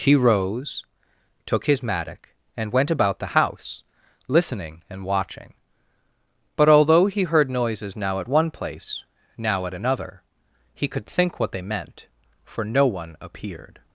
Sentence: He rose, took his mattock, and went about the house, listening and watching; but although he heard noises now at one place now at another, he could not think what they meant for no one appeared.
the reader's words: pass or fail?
fail